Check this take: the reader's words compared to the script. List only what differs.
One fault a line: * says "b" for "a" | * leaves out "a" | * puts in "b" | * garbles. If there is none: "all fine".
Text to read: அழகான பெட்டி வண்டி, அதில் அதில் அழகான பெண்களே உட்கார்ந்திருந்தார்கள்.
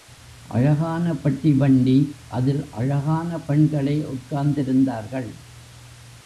* leaves out "அதில்"